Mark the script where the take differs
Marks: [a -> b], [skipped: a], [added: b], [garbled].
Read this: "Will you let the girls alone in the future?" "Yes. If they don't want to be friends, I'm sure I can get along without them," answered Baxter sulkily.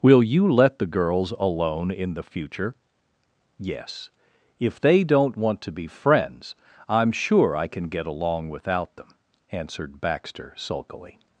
"Will you let the girls alone in the future?" "Yes. If they don't want to be friends, I'm sure I can get along without them," answered Baxter sulkily.